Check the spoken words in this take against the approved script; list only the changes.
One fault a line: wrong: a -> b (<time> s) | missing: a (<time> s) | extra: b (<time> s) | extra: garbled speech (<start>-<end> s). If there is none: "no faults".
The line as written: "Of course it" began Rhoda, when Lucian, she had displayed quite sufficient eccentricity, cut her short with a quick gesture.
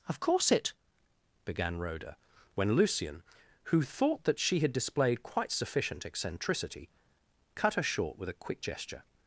extra: who thought that (3.6 s)